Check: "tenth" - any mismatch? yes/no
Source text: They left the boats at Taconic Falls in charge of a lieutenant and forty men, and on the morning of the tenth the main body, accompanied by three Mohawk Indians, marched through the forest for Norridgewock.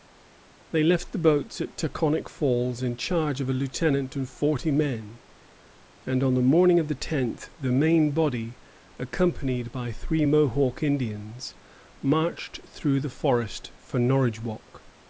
no